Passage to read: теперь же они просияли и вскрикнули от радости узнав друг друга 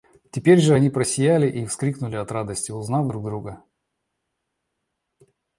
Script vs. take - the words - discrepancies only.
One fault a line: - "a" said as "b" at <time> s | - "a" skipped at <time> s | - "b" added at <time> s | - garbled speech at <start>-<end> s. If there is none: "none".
none